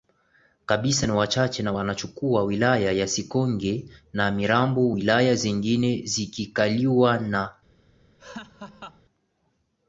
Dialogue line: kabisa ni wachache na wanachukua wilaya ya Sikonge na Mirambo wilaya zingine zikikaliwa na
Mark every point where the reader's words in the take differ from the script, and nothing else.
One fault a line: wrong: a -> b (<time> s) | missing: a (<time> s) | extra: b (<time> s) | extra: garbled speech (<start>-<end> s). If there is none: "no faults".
no faults